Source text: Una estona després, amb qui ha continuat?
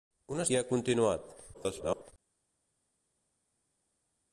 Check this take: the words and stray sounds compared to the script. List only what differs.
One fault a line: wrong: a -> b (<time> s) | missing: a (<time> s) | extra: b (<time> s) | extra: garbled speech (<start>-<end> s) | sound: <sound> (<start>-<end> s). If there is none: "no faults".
missing: estona després amb (0.5 s)
extra: garbled speech (1.5-2.1 s)